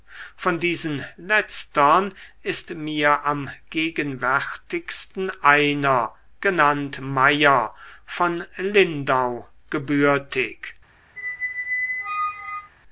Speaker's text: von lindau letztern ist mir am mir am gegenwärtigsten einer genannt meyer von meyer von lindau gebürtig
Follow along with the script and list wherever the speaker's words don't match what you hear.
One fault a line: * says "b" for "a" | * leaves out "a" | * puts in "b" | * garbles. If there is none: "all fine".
* says "diesen" for "lindau"
* leaves out "mir am"
* leaves out "meyer von"